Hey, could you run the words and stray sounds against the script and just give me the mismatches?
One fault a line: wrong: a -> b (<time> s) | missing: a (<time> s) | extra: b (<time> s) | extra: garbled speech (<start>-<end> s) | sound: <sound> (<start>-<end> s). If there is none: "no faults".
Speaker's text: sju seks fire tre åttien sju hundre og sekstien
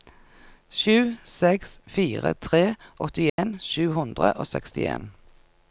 sound: dropout (3.3-3.4 s)